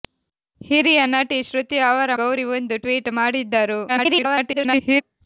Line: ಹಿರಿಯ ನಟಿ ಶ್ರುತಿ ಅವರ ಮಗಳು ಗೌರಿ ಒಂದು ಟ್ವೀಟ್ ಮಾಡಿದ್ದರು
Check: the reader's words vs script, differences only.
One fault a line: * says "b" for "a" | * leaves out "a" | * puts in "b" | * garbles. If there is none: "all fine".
* leaves out "ಮಗಳು"
* garbles